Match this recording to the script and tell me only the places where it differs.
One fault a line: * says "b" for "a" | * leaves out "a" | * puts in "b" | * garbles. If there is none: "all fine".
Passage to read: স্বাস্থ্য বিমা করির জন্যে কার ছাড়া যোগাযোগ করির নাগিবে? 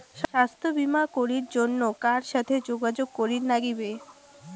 * says "সাথে" for "ছাড়া"